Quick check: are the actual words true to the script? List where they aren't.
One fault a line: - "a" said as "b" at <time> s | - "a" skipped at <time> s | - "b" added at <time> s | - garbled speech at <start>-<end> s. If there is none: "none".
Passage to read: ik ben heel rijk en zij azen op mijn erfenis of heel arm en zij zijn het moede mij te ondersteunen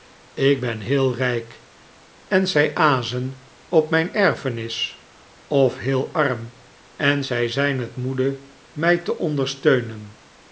none